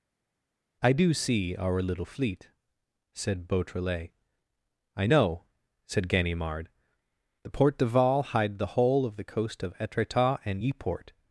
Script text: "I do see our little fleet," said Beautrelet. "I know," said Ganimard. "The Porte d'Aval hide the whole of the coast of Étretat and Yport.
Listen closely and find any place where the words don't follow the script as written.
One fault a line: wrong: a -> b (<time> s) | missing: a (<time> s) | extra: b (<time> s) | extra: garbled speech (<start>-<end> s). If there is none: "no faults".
no faults